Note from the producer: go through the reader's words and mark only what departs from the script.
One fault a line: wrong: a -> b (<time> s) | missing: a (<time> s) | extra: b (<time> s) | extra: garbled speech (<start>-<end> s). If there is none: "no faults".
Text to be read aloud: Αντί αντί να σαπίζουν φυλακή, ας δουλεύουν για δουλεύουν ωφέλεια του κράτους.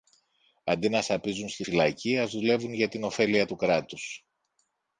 missing: αντί (0.9 s)
extra: στη (1.5 s)
wrong: δουλεύουν -> την (2.9 s)